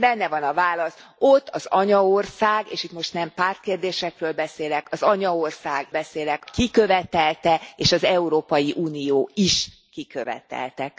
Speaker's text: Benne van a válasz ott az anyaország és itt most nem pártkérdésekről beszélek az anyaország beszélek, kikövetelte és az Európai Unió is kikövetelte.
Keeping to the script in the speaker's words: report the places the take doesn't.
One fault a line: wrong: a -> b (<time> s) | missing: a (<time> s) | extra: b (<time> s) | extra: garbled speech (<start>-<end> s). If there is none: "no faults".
no faults